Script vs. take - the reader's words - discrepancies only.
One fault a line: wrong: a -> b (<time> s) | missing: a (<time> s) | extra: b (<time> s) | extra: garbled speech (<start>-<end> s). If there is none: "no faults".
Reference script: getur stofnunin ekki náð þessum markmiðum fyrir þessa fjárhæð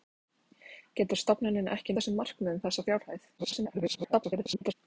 missing: náð (1.9 s)
missing: fyrir (2.6 s)
extra: garbled speech (3.4-4.7 s)